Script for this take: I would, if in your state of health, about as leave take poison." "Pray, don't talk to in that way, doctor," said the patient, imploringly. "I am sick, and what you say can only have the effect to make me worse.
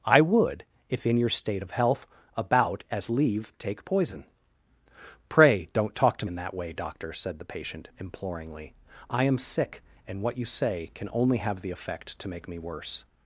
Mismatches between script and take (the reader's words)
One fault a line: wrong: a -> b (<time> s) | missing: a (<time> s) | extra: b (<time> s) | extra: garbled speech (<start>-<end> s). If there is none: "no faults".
no faults